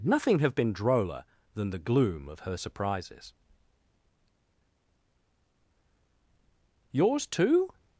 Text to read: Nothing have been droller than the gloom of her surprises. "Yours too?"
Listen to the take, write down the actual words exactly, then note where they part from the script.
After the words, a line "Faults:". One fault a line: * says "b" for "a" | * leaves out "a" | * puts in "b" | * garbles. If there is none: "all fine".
Nothing have been droller than the gloom of her surprises. "Yours too?"
Faults:
all fine